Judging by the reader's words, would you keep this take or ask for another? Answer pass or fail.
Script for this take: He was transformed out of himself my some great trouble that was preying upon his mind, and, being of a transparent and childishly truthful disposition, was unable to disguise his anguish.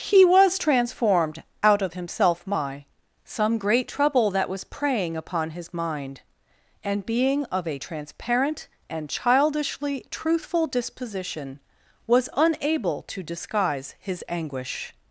pass